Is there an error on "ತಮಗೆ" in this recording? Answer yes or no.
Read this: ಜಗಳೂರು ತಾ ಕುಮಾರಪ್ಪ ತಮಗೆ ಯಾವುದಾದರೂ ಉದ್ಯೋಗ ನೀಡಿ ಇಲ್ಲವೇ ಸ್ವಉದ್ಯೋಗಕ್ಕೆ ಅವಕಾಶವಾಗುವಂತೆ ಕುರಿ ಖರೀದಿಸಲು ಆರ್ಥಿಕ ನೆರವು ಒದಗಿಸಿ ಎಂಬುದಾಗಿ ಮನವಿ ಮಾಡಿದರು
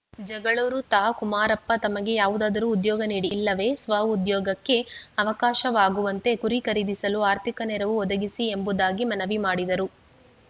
no